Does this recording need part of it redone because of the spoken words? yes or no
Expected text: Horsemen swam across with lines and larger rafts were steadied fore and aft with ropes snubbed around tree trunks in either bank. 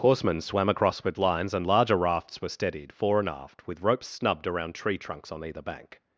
yes